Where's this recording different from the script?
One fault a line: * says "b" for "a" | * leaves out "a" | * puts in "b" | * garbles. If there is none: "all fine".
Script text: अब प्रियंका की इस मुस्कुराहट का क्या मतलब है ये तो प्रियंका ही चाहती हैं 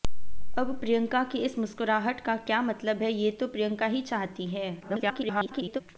* garbles